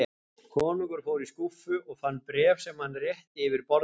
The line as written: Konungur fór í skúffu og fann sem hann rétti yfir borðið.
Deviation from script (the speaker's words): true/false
true